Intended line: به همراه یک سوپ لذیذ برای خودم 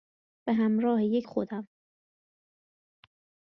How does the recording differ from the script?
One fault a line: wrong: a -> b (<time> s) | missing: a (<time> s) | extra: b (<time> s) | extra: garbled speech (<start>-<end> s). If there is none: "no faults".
missing: سوپ لذیذ برای (1.3 s)